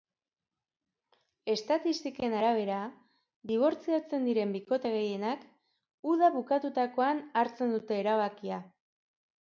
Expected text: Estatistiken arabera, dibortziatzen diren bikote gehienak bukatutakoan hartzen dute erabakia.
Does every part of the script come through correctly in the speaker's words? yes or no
no